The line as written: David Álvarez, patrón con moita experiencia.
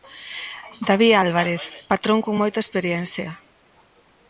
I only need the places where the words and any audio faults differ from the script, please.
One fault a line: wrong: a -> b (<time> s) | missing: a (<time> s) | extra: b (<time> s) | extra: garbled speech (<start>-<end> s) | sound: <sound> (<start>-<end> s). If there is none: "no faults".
no faults